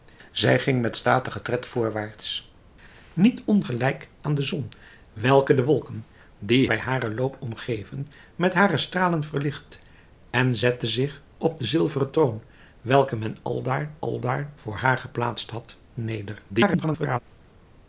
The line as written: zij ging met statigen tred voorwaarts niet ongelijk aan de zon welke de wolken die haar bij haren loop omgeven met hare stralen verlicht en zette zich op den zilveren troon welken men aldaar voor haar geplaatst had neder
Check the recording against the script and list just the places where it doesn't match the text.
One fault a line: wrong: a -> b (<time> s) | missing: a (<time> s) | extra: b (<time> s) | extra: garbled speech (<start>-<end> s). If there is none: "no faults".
missing: haar (6.7 s)
extra: aldaar (14.0 s)
extra: garbled speech (16.5-17.2 s)